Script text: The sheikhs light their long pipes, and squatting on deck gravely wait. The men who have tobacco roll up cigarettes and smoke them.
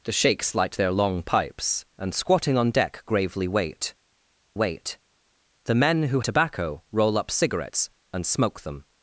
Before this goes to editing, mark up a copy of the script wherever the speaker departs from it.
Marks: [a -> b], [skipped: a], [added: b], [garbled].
The sheikhs light their long pipes, and squatting on deck gravely wait. [added: wait] The men who [skipped: have] tobacco roll up cigarettes and smoke them.